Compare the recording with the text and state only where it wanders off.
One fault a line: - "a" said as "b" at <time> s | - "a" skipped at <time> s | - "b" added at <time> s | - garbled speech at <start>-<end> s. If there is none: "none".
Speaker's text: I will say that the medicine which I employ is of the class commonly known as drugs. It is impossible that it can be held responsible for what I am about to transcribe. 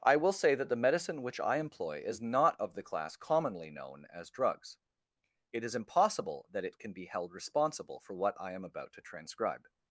- "not" added at 2.2 s